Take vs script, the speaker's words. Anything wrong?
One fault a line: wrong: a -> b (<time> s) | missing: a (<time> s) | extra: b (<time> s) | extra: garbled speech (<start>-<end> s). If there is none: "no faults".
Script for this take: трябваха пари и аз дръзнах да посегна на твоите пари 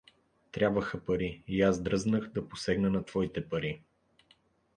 no faults